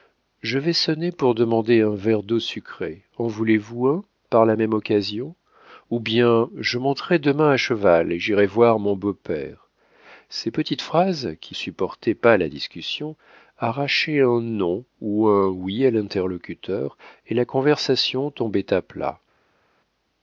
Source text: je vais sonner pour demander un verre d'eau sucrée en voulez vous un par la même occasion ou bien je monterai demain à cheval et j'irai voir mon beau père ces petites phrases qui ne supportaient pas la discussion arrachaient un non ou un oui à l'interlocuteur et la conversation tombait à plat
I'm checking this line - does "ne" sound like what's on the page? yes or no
no